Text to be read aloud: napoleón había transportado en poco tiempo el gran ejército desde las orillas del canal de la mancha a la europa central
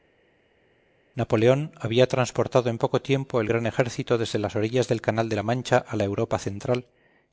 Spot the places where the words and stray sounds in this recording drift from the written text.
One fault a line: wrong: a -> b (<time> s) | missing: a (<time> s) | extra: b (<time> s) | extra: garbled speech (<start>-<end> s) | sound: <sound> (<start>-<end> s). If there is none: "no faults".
no faults